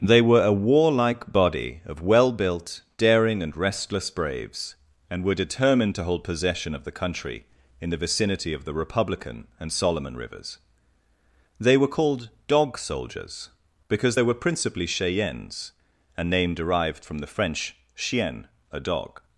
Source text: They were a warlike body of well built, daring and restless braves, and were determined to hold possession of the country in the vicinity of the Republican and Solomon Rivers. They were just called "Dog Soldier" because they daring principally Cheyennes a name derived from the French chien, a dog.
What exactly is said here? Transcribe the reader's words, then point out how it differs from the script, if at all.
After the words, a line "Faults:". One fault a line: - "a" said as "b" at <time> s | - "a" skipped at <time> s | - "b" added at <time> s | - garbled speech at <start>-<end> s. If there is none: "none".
They were a warlike body of well built, daring and restless braves, and were determined to hold possession of the country in the vicinity of the Republican and Solomon Rivers. They were called "Dog Soldiers" because they were principally Cheyennes a name derived from the French chien, a dog.
Faults:
- "just" skipped at 11.9 s
- "Soldier" said as "Soldiers" at 12.8 s
- "daring" said as "were" at 14.2 s